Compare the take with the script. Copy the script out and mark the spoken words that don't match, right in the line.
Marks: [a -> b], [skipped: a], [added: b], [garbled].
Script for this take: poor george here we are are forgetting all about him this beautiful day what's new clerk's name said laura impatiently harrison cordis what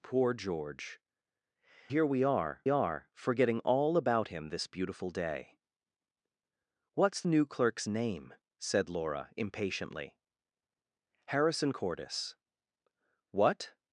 poor george here we are are forgetting all about him this beautiful day what's new clerk's name said laura impatiently harrison cordis what